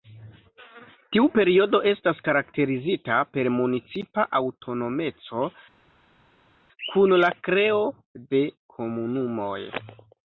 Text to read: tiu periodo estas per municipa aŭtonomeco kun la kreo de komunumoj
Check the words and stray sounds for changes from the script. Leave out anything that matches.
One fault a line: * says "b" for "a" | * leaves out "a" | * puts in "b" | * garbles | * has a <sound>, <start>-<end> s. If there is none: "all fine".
* puts in "karakterizita"